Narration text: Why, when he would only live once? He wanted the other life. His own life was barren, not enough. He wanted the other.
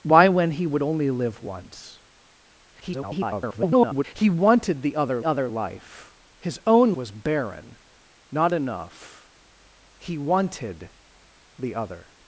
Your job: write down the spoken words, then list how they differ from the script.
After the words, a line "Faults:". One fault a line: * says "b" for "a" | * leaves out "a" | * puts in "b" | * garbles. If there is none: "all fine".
Why, when he would only live once? [garbled] He wanted the other other life. His own was barren, not enough. He wanted the other.
Faults:
* garbles
* puts in "other"
* leaves out "life"